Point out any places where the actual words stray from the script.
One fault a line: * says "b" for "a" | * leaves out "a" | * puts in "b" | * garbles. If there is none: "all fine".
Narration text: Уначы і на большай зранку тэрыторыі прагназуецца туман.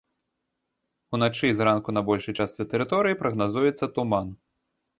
* puts in "зранку"
* says "частцы" for "зранку"